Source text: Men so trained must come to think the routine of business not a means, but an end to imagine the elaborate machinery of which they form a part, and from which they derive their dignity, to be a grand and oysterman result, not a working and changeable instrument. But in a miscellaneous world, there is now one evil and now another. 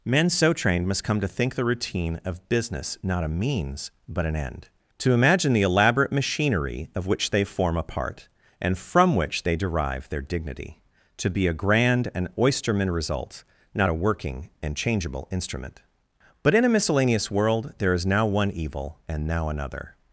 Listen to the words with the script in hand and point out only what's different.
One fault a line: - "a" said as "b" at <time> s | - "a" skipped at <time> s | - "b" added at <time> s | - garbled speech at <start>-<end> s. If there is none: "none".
none